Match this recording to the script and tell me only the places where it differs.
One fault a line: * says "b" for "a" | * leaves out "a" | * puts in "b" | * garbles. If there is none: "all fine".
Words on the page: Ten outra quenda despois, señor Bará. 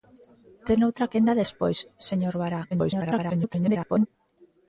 * garbles